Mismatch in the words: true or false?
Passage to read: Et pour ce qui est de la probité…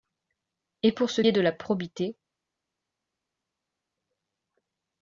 true